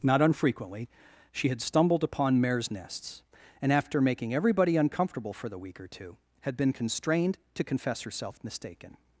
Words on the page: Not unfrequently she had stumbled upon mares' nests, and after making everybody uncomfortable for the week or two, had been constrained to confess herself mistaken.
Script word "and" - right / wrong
right